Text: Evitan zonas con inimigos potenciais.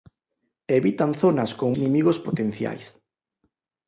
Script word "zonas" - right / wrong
right